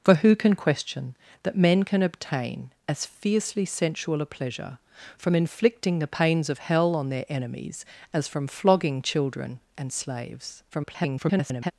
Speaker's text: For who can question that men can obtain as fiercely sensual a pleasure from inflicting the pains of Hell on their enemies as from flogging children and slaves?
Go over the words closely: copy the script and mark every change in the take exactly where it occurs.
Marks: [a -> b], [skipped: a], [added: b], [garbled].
For who can question that men can obtain as fiercely sensual a pleasure from inflicting the pains of Hell on their enemies as from flogging children and slaves? [garbled]